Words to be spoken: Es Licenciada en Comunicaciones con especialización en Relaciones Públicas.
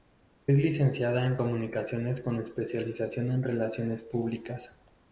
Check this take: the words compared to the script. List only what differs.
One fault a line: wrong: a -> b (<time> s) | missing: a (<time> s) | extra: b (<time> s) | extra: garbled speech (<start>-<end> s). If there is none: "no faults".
no faults